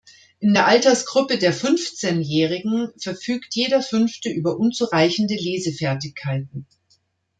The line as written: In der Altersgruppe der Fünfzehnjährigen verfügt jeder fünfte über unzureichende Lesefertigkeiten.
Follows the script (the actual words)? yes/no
yes